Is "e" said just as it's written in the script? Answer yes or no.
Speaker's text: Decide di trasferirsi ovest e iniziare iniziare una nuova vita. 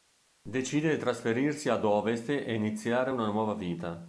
yes